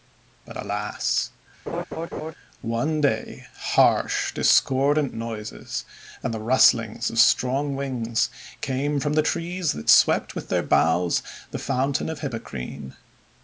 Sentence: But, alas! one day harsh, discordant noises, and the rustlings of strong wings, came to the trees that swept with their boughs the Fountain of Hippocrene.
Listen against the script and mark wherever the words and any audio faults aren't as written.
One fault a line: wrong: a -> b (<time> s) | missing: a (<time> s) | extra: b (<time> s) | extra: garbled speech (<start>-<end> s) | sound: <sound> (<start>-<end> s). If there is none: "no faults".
sound: laugh (1.7-2.3 s)
wrong: to -> from (9.0 s)